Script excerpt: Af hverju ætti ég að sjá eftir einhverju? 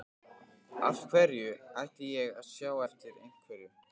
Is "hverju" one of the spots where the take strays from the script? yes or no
no